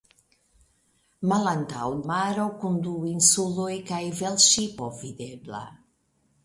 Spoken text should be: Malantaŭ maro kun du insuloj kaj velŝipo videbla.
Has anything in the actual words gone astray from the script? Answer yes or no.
no